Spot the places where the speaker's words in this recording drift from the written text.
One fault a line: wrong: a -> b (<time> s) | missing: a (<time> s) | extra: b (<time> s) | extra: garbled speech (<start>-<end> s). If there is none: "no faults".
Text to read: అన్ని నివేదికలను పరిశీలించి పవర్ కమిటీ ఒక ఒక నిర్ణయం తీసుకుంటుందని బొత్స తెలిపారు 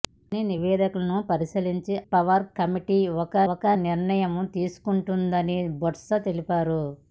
no faults